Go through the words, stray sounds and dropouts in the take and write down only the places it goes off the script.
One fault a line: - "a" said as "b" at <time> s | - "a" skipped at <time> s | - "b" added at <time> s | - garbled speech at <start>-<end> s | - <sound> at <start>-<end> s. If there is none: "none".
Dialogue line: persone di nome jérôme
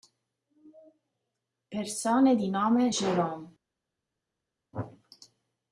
none